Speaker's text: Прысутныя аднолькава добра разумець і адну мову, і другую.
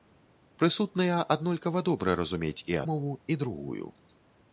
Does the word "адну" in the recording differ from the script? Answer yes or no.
yes